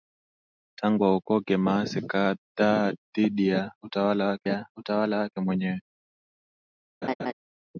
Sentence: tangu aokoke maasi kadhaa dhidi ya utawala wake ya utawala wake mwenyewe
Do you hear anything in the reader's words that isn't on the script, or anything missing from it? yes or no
no